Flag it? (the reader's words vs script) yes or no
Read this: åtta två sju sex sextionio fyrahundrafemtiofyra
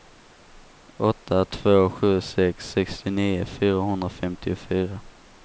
no